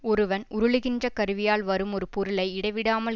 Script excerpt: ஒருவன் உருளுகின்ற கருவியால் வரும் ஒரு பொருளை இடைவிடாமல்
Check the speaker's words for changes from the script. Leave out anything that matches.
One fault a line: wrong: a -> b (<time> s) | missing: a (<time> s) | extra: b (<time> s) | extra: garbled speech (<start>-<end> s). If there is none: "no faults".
no faults